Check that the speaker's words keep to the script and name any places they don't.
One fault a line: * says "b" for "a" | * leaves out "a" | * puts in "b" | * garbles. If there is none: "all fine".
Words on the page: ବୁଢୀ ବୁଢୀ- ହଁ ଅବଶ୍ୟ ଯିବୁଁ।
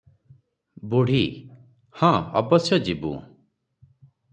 * leaves out "ବୁଢୀ"